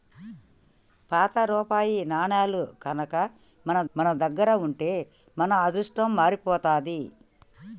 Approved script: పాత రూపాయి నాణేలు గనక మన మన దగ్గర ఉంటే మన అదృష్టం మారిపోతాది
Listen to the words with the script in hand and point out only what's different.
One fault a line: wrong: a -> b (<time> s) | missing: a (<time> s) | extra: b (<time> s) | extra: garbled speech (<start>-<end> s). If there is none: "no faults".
no faults